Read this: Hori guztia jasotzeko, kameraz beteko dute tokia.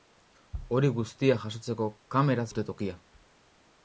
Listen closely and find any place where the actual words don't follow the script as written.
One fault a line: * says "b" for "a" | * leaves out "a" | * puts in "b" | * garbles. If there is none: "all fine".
* leaves out "beteko"